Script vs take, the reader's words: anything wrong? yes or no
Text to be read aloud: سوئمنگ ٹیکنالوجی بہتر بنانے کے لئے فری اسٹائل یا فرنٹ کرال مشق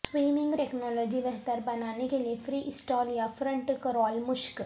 no